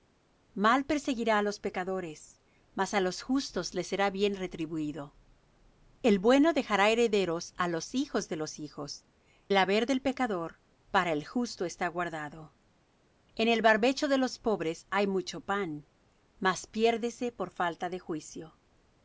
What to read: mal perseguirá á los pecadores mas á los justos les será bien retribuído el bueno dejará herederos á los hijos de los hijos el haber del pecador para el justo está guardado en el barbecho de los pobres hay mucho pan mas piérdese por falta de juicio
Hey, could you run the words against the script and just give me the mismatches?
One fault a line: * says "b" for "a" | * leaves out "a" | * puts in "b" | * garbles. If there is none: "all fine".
all fine